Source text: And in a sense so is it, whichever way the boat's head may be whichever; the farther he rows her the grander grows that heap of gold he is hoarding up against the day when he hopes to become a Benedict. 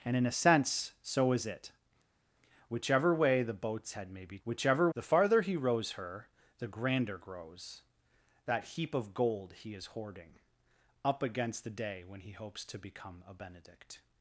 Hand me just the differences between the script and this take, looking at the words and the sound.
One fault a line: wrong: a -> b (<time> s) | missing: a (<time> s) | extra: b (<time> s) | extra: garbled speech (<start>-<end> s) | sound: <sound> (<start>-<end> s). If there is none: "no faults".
no faults